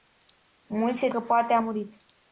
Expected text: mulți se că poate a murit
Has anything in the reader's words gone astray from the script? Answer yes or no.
no